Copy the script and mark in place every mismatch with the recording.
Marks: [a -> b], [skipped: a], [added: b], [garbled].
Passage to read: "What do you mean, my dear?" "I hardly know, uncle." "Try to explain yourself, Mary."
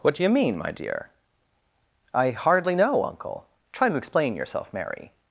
"What do you mean, my dear?" "I hardly know, uncle." "Try to explain yourself, Mary."